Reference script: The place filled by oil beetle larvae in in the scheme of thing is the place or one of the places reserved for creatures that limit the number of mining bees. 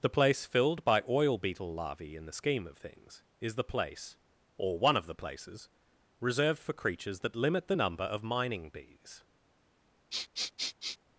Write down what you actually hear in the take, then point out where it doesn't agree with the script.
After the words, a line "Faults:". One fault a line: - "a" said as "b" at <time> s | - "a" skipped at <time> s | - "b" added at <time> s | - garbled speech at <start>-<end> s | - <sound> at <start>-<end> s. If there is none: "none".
The place filled by oil beetle larvae in the scheme of things is the place or one of the places reserved for creatures that limit the number of mining bees.
Faults:
- "in" skipped at 2.2 s
- "thing" said as "things" at 2.8 s
- sniff at 10.1-11.0 s